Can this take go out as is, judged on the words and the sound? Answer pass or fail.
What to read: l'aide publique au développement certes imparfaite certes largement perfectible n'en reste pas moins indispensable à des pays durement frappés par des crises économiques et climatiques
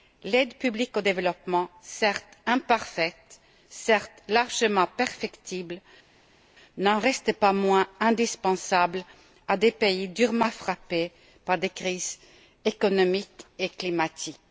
pass